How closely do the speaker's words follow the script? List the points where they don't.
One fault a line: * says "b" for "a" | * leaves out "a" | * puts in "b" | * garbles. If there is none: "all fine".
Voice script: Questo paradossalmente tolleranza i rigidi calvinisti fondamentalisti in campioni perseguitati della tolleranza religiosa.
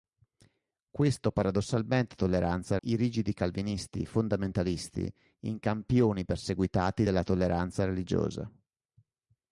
all fine